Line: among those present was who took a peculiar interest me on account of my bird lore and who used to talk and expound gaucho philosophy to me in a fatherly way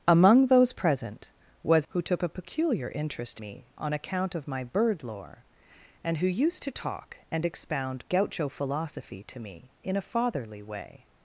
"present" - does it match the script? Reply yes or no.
yes